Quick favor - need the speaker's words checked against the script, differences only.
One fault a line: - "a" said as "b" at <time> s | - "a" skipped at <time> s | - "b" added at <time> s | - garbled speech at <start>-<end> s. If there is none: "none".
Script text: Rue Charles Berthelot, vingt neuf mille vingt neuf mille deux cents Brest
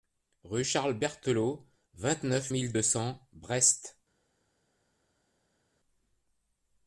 - "vingt neuf mille" skipped at 2.7 s